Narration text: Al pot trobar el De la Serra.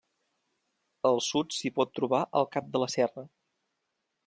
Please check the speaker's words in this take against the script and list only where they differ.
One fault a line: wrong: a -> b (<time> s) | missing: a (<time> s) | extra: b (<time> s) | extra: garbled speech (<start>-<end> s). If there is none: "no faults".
extra: sud s'hi (1.2 s)
extra: Cap (2.6 s)